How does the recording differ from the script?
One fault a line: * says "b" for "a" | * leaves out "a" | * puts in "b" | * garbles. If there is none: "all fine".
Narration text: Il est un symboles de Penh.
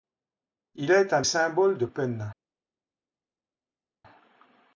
all fine